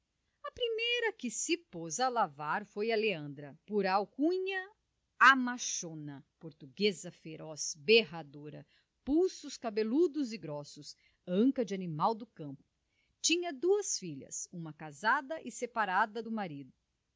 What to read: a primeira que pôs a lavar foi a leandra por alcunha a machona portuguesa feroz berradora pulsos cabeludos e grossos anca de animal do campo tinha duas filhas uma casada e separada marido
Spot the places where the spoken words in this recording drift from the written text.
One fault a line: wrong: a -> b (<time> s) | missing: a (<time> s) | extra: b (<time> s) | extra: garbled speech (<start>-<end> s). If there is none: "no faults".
extra: se (1.3 s)
extra: do (16.2 s)